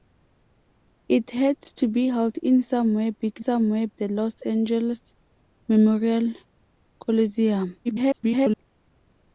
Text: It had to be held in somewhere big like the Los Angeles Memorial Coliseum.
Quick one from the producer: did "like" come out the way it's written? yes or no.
no